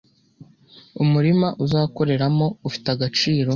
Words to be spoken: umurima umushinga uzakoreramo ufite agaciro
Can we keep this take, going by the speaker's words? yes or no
no